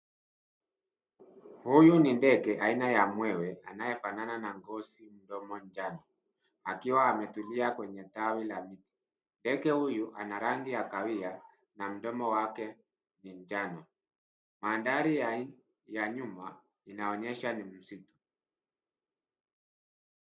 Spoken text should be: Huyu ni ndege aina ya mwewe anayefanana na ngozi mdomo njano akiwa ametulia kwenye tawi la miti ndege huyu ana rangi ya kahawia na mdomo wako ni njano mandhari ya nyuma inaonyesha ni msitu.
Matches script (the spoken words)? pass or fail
fail